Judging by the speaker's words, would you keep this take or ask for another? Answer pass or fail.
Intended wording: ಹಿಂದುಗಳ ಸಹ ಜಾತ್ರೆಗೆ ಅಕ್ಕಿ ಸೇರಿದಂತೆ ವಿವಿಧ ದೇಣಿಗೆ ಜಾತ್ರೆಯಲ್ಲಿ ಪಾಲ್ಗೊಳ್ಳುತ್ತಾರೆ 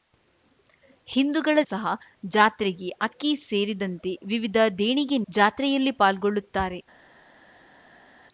pass